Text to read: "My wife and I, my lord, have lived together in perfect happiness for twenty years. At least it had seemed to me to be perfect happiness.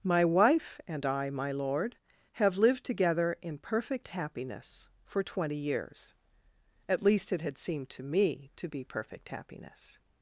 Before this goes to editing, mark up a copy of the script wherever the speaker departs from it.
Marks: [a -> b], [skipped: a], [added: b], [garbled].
"My wife and I, my lord, have lived together in perfect happiness for twenty years. At least it had seemed to me to be perfect happiness.